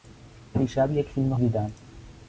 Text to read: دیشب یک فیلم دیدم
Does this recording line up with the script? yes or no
yes